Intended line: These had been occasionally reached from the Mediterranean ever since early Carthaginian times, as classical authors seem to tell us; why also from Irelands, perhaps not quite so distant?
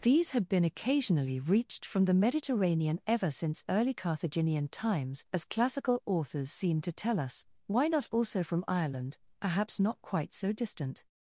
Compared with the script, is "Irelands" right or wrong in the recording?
wrong